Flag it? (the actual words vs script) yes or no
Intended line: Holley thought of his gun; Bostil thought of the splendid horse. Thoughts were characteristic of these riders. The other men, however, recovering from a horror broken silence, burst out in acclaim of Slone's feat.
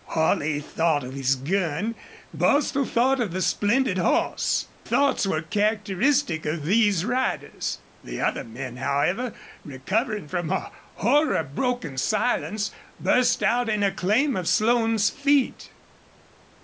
no